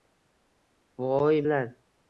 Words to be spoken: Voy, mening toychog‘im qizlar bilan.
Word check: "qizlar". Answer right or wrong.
wrong